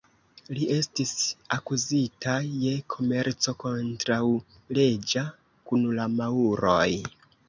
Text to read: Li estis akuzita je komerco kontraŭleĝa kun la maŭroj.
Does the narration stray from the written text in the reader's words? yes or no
no